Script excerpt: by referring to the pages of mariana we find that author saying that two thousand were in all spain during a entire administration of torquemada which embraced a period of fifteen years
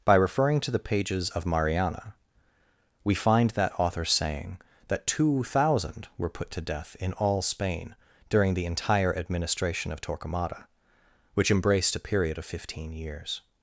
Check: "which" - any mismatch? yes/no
no